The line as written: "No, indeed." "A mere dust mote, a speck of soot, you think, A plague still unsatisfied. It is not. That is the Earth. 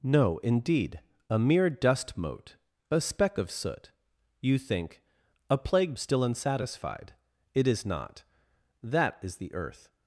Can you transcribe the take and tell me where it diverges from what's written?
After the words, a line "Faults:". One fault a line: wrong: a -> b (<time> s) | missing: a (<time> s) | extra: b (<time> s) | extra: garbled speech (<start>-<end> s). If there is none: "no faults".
"No, indeed." "A mere dust mote, a speck of soot, you think, A plague still unsatisfied. It is not. That is the Earth.
Faults:
no faults